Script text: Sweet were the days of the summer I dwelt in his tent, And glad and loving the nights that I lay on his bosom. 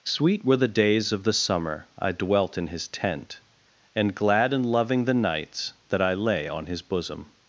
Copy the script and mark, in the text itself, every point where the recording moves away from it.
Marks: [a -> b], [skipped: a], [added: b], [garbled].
Sweet were the days of the summer I dwelt in his tent, And glad and loving the nights that I lay on his bosom.